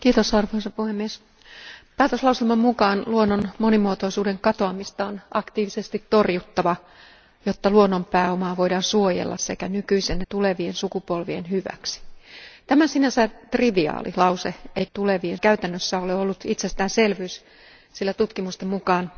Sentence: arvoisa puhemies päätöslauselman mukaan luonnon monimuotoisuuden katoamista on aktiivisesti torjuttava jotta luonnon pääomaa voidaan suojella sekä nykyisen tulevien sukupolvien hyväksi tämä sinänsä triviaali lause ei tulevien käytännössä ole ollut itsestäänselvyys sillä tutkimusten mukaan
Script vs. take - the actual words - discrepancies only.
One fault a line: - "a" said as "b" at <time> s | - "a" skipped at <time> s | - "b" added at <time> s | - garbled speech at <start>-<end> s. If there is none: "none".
none